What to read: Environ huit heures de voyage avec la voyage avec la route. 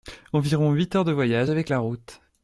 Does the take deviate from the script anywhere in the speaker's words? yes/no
yes